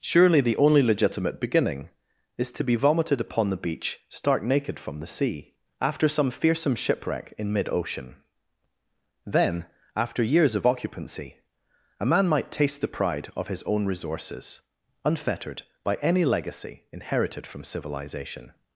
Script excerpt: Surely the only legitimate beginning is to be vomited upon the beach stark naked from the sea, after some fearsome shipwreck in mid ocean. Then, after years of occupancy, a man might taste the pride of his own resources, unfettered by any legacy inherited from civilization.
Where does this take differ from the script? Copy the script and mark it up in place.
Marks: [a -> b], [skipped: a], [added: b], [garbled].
Surely the only legitimate beginning is to be vomited upon the beach stark naked from the sea, after some fearsome shipwreck in mid ocean. Then, after years of occupancy, a man might taste the pride of his own resources, unfettered by any legacy inherited from civilization.